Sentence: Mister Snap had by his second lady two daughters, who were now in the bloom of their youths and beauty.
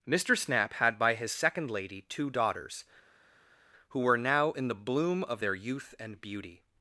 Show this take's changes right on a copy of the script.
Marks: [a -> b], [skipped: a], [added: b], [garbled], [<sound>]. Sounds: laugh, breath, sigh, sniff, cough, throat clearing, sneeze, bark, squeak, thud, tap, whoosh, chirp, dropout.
Mister Snap had by his second lady two daughters, who were now in the bloom of their [youths -> youth] and beauty.